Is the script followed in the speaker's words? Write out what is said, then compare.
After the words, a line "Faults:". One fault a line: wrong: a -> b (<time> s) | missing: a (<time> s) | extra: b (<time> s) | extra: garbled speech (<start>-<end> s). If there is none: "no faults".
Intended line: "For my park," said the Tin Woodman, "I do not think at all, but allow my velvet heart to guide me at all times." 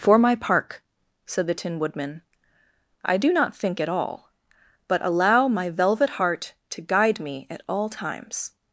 "For my park," said the Tin Woodman, "I do not think at all, but allow my velvet heart to guide me at all times."
Faults:
no faults